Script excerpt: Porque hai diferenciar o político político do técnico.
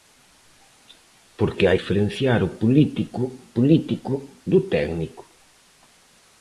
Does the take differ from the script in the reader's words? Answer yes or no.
no